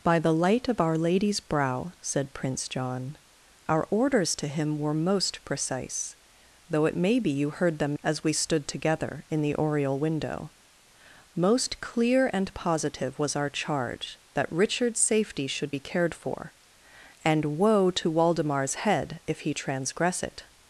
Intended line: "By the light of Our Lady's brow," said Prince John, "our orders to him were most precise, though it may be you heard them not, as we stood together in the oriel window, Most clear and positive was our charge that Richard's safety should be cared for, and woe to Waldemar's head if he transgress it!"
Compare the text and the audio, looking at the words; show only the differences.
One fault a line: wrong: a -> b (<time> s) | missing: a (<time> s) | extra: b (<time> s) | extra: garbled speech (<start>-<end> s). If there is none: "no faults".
missing: not (8.0 s)